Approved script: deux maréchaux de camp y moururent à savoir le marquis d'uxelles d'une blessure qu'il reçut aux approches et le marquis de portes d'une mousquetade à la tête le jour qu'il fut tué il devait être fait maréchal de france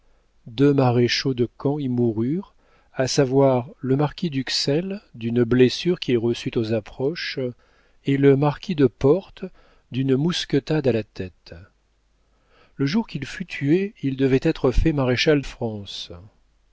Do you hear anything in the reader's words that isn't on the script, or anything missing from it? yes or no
yes